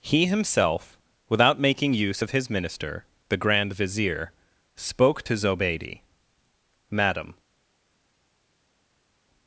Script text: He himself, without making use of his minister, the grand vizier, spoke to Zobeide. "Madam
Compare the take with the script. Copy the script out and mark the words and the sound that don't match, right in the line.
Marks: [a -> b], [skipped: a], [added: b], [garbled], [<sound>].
He himself, without making use of his minister, the grand vizier, spoke to Zobeide. "Madam